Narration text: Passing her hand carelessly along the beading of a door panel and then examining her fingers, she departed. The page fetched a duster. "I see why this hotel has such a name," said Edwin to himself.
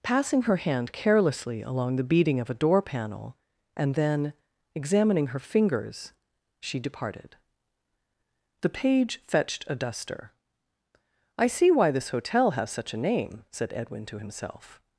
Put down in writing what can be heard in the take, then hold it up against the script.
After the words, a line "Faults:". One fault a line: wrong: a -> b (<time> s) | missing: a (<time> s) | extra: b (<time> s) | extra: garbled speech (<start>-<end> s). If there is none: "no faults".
Passing her hand carelessly along the beading of a door panel and then examining her fingers, she departed. The page fetched a duster. "I see why this hotel has such a name," said Edwin to himself.
Faults:
no faults